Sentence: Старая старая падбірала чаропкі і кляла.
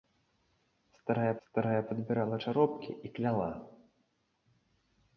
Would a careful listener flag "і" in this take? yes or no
no